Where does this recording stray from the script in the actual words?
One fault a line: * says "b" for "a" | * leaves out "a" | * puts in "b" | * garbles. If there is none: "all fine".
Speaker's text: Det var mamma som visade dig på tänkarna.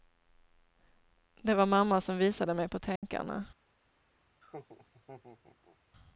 * says "mig" for "dig"